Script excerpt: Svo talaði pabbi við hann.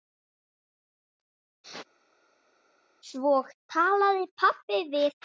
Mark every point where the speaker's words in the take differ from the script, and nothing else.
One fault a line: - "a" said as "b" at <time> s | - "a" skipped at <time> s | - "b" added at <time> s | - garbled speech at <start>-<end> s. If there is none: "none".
none